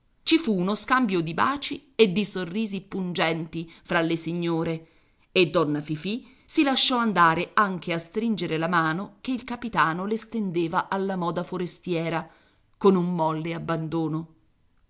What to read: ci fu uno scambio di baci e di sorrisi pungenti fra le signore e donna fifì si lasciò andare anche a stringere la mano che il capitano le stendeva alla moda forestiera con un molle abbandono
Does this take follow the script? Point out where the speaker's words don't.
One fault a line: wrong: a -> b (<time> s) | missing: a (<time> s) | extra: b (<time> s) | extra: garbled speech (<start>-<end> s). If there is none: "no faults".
no faults